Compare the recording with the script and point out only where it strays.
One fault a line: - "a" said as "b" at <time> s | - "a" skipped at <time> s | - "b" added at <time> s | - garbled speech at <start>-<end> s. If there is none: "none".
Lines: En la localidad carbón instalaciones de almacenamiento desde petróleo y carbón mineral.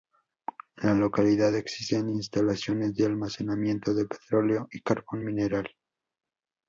- "carbón" said as "existen" at 1.5 s
- "desde" said as "de" at 3.9 s